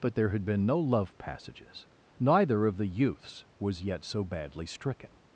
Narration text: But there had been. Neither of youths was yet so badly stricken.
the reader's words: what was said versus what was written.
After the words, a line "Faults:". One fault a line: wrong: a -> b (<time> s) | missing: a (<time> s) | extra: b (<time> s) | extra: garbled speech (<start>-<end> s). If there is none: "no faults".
But there had been no love passages. Neither of the youths was yet so badly stricken.
Faults:
extra: no love passages (0.7 s)
extra: the (2.8 s)